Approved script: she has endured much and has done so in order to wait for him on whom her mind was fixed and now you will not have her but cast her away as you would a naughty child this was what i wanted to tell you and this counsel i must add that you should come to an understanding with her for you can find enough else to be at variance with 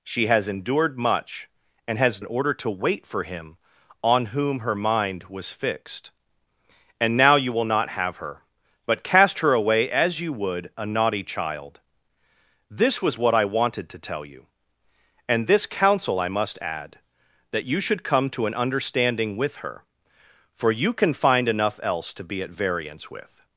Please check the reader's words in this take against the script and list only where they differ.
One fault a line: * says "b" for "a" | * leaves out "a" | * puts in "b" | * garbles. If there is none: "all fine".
* leaves out "done so"